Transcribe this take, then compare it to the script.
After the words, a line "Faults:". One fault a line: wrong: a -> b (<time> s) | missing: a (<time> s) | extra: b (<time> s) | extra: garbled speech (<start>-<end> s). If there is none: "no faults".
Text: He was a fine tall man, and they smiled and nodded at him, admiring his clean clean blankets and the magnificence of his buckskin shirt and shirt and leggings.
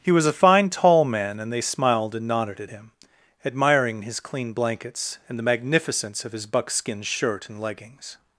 He was a fine tall man, and they smiled and nodded at him, admiring his clean blankets and the magnificence of his buckskin shirt and leggings.
Faults:
missing: clean (4.5 s)
missing: shirt and (7.6 s)